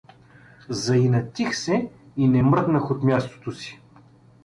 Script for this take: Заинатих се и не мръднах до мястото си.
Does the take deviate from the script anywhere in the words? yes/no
yes